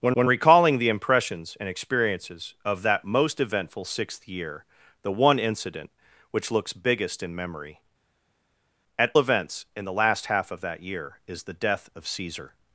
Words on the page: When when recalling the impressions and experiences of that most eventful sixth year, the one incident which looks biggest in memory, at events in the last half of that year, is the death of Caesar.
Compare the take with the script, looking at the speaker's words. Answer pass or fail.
pass